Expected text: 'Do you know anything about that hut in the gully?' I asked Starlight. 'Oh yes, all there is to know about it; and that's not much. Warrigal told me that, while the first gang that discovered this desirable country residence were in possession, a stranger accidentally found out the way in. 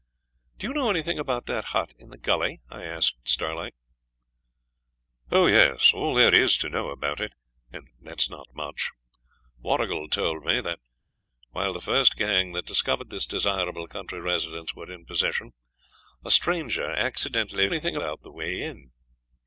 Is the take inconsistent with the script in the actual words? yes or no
yes